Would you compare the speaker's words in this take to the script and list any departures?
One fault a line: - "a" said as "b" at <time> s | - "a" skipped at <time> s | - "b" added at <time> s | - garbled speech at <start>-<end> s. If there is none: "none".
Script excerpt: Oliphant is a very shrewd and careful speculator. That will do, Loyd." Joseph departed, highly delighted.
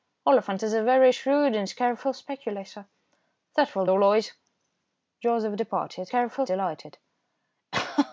- "do" skipped at 3.9 s
- "highly" said as "careful" at 6.1 s